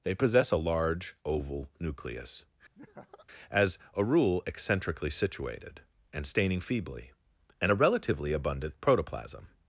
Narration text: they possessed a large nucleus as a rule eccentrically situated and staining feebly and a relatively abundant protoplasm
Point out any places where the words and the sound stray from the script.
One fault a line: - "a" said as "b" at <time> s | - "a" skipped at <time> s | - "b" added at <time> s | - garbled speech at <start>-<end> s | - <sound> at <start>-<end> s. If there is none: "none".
- "possessed" said as "possess" at 0.1 s
- "oval" added at 1.2 s
- laugh at 2.7-3.3 s